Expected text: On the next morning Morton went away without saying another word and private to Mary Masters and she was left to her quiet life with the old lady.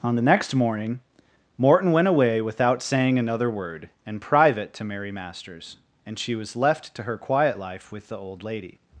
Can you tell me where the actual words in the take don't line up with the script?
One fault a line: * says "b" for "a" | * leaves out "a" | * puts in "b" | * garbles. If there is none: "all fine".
all fine